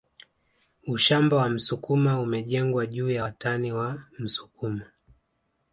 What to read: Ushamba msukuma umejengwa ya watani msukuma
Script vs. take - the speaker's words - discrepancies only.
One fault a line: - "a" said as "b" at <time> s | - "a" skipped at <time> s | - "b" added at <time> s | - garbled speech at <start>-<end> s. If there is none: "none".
- "wa" added at 1.4 s
- "juu" added at 2.9 s
- "wa" added at 3.7 s